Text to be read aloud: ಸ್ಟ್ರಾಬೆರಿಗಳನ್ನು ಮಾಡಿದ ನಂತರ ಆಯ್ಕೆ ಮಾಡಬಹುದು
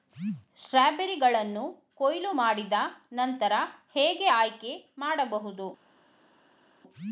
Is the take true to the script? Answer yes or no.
no